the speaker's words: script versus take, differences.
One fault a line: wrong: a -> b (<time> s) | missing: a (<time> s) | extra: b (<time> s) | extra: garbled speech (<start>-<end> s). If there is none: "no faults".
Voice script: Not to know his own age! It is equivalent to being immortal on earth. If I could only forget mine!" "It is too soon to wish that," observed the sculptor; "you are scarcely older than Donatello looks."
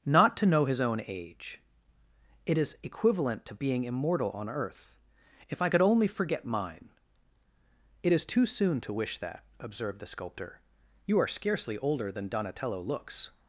no faults